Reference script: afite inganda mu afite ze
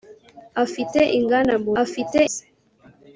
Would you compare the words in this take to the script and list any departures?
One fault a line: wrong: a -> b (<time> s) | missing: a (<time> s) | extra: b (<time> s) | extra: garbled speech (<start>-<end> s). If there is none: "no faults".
no faults